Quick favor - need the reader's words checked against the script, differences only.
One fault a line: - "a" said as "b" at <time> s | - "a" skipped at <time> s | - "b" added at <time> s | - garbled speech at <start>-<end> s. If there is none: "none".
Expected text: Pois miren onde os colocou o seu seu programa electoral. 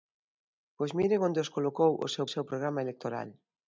none